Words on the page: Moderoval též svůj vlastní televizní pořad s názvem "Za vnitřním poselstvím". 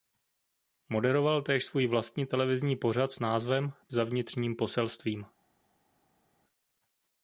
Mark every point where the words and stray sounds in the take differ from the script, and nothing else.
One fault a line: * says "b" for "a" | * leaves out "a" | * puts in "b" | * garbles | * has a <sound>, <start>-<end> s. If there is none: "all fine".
all fine